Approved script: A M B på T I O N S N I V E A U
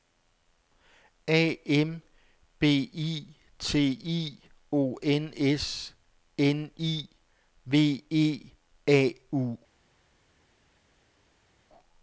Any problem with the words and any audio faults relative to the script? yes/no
yes